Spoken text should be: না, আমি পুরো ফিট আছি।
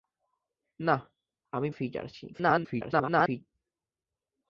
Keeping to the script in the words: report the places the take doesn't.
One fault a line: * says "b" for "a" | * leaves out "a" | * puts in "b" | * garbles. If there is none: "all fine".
* leaves out "পুরো"
* garbles